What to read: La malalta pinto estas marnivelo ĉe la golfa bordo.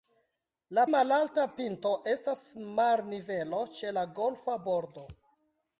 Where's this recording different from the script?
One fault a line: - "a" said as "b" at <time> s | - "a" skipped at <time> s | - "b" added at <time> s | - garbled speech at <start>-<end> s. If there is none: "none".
none